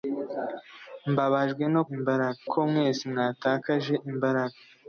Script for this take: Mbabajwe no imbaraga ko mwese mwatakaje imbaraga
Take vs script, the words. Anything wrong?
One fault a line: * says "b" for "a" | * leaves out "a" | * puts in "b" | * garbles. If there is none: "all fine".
all fine